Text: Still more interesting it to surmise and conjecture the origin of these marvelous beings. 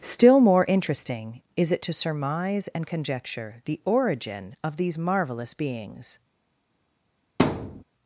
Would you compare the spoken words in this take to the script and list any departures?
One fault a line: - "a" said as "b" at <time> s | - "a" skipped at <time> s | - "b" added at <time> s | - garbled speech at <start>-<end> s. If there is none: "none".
- "is" added at 1.6 s